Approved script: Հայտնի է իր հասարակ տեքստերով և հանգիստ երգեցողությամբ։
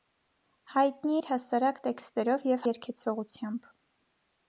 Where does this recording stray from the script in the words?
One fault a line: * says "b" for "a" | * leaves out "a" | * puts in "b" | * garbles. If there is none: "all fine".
* leaves out "է"
* leaves out "հանգիստ"